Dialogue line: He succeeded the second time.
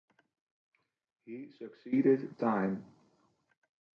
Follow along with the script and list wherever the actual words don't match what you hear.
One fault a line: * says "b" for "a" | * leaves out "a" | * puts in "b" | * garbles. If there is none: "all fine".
* leaves out "the second"